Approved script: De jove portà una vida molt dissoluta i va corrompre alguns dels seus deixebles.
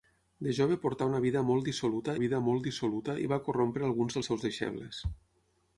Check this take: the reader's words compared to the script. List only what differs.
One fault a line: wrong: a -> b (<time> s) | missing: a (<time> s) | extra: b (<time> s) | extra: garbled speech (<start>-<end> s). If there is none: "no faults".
extra: vida molt dissoluta (2.2 s)